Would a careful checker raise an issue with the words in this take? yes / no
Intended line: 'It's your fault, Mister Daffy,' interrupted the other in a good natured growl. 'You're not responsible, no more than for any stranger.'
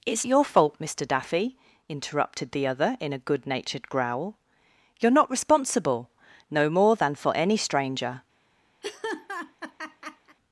no